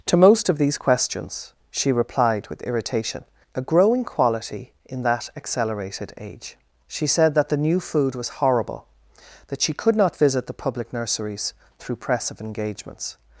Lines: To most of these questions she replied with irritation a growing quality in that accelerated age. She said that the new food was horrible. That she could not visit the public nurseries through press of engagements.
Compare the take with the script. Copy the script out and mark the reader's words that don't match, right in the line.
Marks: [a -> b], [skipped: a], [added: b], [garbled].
To most of these questions she replied with irritation a growing quality in that accelerated age. She said that the new food was horrible. That she could not visit the public nurseries through press of engagements.